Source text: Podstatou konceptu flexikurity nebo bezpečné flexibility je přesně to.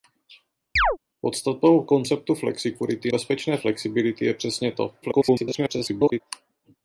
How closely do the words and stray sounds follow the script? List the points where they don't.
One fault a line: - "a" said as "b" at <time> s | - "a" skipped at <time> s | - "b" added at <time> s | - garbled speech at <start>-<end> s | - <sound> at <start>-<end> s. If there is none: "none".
- chirp at 0.8-1.0 s
- "nebo" skipped at 3.1 s
- garbled speech at 5.0-6.2 s